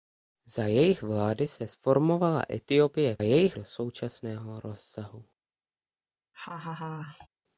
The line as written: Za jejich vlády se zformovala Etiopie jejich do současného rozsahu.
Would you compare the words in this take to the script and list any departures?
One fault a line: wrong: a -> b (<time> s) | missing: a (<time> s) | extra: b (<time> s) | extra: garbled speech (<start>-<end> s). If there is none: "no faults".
no faults